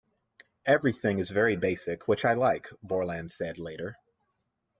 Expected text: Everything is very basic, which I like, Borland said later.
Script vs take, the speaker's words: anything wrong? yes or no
no